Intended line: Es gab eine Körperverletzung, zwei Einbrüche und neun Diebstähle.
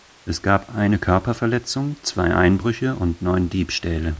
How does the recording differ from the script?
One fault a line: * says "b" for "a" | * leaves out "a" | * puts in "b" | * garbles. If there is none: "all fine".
all fine